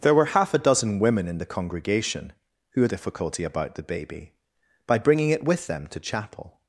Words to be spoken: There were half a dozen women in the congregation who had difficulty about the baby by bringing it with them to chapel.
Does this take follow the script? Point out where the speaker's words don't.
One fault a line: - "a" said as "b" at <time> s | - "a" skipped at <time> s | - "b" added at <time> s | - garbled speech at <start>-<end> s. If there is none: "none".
none